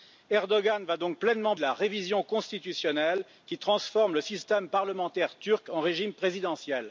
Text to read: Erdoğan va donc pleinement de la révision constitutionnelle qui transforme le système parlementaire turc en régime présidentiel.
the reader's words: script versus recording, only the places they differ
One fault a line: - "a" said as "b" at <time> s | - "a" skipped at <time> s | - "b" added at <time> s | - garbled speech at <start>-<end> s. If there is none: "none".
none